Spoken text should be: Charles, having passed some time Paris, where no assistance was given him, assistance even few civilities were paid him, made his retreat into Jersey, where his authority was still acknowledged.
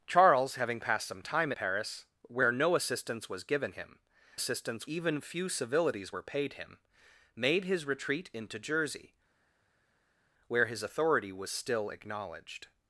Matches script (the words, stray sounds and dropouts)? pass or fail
pass